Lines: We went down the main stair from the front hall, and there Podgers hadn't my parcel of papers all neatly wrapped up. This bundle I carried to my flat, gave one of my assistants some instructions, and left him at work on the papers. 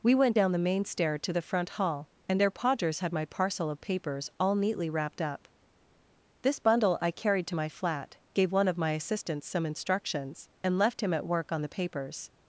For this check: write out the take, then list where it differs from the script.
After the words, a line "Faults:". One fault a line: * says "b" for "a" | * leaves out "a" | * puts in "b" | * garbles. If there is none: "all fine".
We went down the main stair to the front hall, and there Podgers had my parcel of papers all neatly wrapped up. This bundle I carried to my flat, gave one of my assistants some instructions, and left him at work on the papers.
Faults:
* says "to" for "from"
* says "had" for "hadn't"